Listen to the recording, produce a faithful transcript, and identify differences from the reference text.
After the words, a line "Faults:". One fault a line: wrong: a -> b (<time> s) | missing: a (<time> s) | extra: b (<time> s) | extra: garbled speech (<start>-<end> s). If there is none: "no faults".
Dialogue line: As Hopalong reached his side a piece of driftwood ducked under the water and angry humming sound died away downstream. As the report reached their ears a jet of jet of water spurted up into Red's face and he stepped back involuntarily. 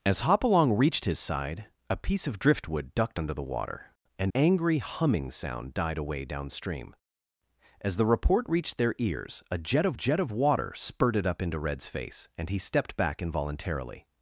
As Hopalong reached his side a piece of driftwood ducked under the water and angry humming sound died away downstream. As the report reached their ears a jet of jet of water spurted up into Red's face and he stepped back involuntarily.
Faults:
no faults